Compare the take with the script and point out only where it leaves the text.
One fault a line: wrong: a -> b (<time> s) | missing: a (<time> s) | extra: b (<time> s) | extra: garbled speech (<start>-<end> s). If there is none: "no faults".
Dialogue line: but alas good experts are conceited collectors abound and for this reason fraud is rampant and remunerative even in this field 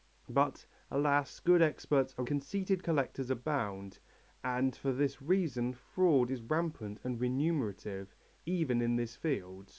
no faults